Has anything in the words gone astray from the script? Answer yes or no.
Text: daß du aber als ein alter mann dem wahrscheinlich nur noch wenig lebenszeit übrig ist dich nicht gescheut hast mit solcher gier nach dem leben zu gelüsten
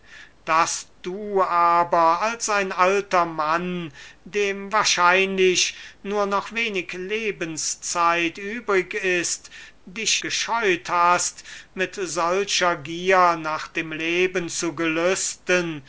yes